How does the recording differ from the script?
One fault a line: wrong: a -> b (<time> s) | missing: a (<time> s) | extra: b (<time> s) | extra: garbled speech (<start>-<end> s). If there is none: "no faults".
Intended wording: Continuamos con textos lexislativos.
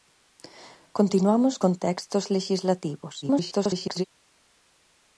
extra: garbled speech (3.2-4.0 s)